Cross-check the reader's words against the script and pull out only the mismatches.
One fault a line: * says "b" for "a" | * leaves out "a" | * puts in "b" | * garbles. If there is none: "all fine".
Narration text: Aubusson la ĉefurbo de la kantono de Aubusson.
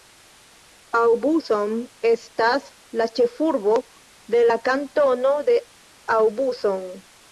* puts in "estas"